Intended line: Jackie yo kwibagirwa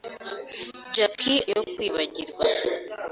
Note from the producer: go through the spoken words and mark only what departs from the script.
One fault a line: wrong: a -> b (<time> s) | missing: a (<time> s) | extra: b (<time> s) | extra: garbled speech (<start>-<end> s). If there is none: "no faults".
no faults